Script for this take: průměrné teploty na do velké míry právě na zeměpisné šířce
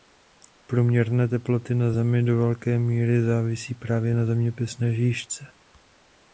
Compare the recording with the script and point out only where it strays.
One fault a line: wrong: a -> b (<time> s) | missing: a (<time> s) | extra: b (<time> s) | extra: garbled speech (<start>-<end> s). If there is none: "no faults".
extra: zemi (1.9 s)
extra: závisí (3.2 s)